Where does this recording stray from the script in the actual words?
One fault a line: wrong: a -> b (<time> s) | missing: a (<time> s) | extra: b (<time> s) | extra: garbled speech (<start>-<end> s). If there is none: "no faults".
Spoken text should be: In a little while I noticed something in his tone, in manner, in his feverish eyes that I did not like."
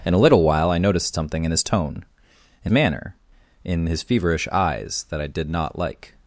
no faults